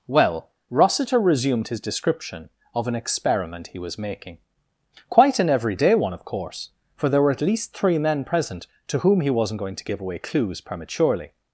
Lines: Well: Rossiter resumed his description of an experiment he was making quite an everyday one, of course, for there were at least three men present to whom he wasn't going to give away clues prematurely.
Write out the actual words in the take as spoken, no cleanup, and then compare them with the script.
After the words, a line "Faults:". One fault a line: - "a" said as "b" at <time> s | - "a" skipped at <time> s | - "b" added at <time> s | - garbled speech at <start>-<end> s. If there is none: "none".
Well: Rossiter resumed his description of an experiment he was making quite an everyday one, of course, for there were at least three men present to whom he wasn't going to give away clues prematurely.
Faults:
none